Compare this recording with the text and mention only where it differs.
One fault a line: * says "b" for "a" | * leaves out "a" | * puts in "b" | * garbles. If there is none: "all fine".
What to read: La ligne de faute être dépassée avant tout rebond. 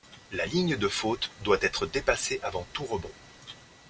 * puts in "doit"